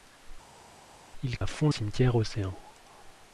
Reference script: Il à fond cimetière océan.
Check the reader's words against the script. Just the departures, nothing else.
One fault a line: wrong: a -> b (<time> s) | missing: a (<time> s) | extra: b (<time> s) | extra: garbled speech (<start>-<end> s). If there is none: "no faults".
no faults